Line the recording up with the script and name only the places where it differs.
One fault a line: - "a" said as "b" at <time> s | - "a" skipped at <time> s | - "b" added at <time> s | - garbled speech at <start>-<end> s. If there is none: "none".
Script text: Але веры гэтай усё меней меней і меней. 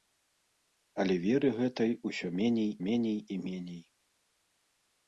none